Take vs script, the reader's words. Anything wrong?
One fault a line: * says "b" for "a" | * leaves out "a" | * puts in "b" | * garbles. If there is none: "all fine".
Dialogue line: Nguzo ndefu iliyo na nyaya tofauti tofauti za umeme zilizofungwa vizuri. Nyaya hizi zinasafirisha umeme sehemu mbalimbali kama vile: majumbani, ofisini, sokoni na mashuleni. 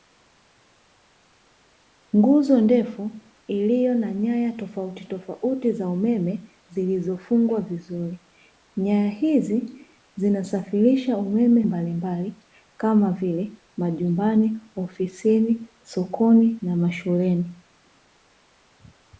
* leaves out "sehemu"